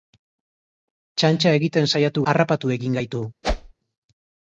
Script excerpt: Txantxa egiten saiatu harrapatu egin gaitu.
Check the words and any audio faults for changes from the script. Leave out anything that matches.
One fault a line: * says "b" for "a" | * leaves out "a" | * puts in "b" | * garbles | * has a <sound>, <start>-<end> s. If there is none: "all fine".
* has a whoosh, 3.4-3.7 s